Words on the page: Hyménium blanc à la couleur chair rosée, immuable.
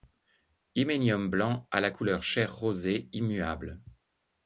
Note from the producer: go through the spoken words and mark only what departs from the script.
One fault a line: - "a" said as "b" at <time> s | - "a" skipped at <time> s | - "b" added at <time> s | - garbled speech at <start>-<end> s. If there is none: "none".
none